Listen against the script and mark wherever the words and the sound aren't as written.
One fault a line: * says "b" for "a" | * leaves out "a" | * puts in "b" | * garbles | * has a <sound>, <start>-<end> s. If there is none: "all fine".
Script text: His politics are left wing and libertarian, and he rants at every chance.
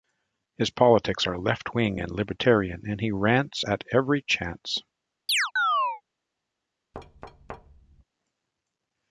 * has a chirp, 5.3-6.0 s
* has a thud, 6.9-8.0 s